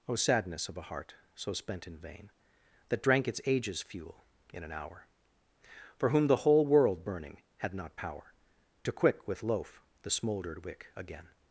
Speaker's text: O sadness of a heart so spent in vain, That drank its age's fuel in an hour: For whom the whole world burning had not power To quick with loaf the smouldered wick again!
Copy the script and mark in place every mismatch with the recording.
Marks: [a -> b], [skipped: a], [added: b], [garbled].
O sadness of a heart so spent in vain, That drank its age's fuel in an hour: For whom the whole world burning had not power To quick with loaf the smouldered wick again!